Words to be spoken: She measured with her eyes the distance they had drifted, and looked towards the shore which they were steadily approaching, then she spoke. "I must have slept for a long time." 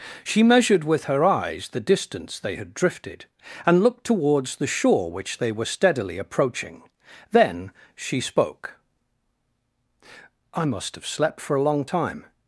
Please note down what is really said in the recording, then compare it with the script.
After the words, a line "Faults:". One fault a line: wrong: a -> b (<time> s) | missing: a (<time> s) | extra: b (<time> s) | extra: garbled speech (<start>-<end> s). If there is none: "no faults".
She measured with her eyes the distance they had drifted, and looked towards the shore which they were steadily approaching, then she spoke. "I must have slept for a long time."
Faults:
no faults